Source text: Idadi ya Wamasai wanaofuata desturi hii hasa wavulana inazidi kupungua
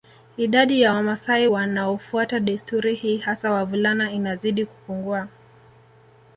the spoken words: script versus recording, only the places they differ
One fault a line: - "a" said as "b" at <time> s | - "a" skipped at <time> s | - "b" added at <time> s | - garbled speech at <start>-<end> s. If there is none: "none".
none